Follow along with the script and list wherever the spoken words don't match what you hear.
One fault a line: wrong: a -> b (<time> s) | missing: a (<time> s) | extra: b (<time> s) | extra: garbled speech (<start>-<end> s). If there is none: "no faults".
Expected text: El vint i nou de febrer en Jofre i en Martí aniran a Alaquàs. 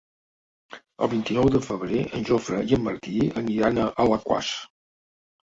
no faults